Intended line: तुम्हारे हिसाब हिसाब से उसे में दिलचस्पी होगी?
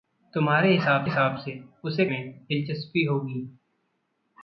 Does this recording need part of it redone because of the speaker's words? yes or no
no